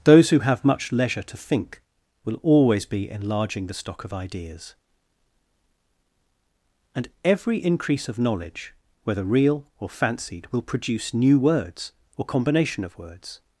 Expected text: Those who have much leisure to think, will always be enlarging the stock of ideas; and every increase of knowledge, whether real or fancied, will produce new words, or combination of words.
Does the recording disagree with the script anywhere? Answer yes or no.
no